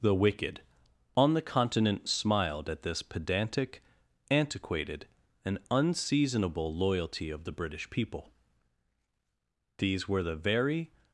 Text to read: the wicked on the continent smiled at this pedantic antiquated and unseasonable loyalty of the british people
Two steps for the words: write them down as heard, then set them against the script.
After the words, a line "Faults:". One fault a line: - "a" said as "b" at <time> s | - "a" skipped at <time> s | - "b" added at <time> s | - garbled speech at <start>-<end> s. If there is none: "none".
the wicked on the continent smiled at this pedantic antiquated and unseasonable loyalty of the british people these were the very
Faults:
- "these were the very" added at 9.8 s